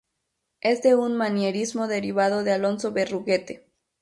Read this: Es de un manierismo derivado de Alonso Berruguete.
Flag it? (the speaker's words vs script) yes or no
no